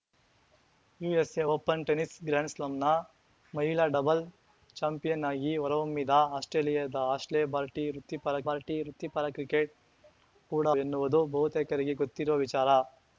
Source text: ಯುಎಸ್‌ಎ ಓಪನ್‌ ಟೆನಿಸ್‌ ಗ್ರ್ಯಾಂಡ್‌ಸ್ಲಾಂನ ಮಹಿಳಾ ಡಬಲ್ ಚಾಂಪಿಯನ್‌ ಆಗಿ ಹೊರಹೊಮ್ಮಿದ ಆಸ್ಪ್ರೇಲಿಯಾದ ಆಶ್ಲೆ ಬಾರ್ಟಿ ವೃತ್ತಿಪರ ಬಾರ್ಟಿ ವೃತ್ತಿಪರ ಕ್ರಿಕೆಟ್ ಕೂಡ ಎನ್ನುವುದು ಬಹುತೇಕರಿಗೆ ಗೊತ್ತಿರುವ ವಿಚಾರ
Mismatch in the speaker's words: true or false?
false